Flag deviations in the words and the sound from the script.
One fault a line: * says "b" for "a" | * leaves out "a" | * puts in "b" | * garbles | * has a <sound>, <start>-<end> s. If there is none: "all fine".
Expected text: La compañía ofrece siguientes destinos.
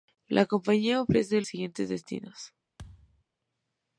* has a thud, 2.8-3.2 s